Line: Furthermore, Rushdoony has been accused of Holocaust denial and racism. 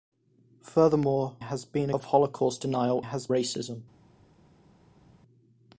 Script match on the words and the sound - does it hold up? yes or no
no